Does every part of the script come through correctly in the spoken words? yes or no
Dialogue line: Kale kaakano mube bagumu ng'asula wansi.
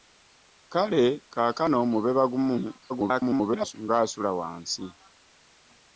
no